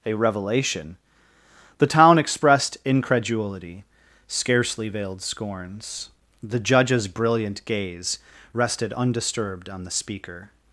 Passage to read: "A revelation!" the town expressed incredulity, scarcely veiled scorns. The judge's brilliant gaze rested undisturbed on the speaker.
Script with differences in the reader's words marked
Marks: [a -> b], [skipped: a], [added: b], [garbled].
"A revelation!" the town expressed incredulity, scarcely veiled scorns. The judge's brilliant gaze rested undisturbed on the speaker.